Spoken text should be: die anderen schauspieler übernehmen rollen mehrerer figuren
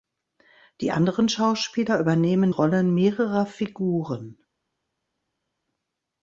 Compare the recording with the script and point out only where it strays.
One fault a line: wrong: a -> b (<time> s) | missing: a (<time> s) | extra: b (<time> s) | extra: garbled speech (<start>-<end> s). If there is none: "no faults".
no faults